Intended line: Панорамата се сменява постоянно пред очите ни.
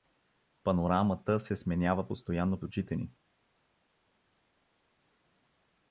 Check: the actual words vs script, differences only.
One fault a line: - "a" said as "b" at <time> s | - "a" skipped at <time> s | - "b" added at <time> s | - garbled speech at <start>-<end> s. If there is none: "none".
- "пред" skipped at 2.6 s